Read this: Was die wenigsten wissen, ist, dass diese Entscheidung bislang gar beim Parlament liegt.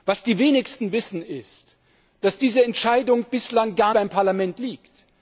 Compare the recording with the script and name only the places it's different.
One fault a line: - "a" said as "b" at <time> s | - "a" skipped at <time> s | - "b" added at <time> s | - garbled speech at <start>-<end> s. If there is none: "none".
none